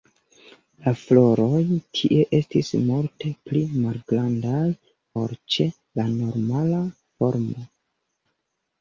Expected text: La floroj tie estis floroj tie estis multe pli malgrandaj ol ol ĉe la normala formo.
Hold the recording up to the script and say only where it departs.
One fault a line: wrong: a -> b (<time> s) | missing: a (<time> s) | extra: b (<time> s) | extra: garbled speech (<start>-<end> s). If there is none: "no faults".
missing: floroj tie estis (2.7 s)
missing: ol (5.3 s)